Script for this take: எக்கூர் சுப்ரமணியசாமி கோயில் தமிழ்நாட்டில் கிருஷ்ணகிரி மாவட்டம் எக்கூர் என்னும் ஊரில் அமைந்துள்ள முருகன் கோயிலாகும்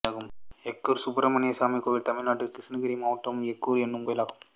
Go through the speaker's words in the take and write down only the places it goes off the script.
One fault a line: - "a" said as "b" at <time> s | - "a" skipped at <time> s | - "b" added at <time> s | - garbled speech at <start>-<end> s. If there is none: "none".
- "ஊரில் அமைந்துள்ள முருகன்" skipped at 4.1 s